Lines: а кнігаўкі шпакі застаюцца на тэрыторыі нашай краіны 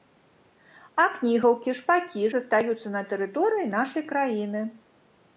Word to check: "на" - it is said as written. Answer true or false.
true